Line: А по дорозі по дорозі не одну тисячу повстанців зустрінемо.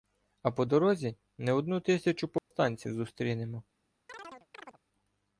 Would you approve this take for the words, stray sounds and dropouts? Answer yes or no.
no